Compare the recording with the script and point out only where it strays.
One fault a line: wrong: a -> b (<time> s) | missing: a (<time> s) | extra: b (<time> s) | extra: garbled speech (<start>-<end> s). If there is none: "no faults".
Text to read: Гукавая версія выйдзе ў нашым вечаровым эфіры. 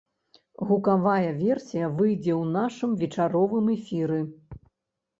no faults